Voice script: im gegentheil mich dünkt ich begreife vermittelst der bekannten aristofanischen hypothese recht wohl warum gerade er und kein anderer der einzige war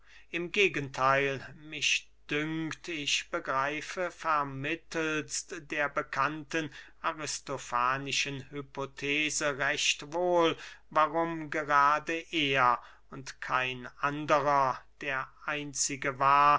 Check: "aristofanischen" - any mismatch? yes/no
no